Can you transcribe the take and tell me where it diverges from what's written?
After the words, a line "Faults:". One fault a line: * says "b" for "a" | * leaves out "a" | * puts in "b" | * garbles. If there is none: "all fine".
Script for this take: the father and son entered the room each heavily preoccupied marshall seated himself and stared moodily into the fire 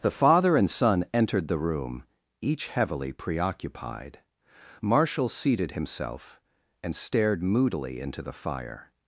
the father and son entered the room each heavily preoccupied marshall seated himself and stared moodily into the fire
Faults:
all fine